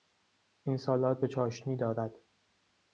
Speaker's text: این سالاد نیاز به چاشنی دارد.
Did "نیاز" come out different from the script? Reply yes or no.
yes